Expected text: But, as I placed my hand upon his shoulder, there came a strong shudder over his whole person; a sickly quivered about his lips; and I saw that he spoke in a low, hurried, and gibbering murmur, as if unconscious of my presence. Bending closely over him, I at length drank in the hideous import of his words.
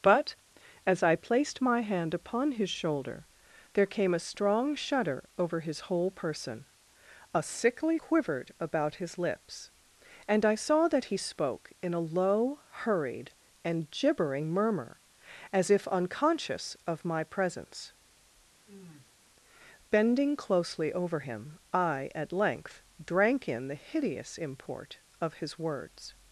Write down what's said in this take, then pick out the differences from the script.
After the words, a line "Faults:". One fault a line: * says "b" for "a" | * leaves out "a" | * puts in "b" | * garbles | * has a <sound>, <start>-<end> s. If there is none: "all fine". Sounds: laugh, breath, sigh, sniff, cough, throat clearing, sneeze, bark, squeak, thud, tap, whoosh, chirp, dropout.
But, as I placed my hand upon his shoulder, there came a strong shudder over his whole person; a sickly quivered about his lips; and I saw that he spoke in a low, hurried, and gibbering murmur, as if unconscious of my presence. Bending closely over him, I at length drank in the hideous import of his words.
Faults:
* has a sniff, 18.7-19.2 s